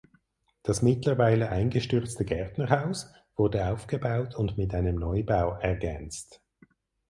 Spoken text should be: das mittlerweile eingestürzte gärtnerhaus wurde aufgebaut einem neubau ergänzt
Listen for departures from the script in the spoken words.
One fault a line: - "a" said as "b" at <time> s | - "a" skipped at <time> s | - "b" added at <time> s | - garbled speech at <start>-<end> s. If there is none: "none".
- "und mit" added at 4.3 s